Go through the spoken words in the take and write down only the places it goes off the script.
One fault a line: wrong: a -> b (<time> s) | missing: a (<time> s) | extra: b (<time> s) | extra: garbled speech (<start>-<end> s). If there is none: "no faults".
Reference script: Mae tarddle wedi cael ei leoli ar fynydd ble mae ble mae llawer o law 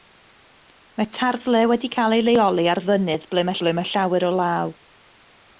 no faults